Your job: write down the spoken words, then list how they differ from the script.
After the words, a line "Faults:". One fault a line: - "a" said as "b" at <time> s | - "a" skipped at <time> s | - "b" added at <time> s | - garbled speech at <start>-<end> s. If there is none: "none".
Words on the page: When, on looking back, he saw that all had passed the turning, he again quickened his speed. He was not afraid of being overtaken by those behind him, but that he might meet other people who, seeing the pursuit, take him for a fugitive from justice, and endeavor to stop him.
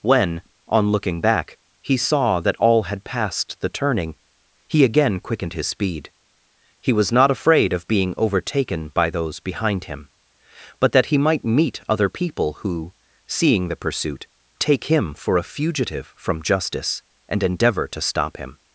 When, on looking back, he saw that all had passed the turning, he again quickened his speed. He was not afraid of being overtaken by those behind him, but that he might meet other people who, seeing the pursuit, take him for a fugitive from justice, and endeavor to stop him.
Faults:
none